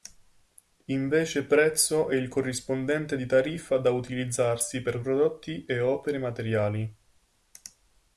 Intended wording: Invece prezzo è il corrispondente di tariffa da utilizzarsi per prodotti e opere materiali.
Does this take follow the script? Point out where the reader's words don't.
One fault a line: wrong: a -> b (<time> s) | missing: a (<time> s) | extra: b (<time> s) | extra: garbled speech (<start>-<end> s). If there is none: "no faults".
no faults